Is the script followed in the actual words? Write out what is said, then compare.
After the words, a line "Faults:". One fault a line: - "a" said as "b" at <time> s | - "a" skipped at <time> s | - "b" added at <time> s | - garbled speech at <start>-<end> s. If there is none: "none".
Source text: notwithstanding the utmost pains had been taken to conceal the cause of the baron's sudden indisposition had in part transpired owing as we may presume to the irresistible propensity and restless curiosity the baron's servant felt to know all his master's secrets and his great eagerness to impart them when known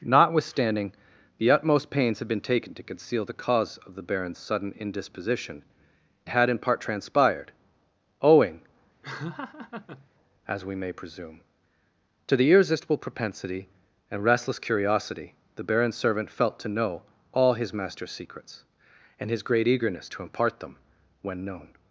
notwithstanding the utmost pains had been taken to conceal the cause of the baron's sudden indisposition had in part transpired owing as we may presume to the irresistible propensity and restless curiosity the baron's servant felt to know all his master's secrets and his great eagerness to impart them when known
Faults:
none